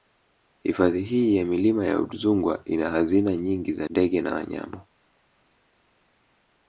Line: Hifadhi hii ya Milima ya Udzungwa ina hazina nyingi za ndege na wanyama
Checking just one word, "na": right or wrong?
right